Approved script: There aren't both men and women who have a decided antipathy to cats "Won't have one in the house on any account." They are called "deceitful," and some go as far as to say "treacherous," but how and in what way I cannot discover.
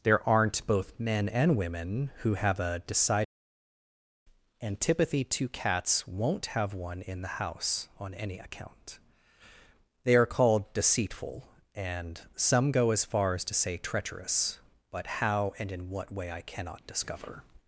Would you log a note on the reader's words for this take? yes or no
no